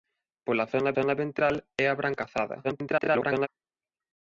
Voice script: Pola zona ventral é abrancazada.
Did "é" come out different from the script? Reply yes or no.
no